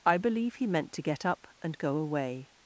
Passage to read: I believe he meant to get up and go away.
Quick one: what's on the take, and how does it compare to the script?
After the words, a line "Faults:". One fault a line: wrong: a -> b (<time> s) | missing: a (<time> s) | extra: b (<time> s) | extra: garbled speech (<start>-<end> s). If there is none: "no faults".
I believe he meant to get up and go away.
Faults:
no faults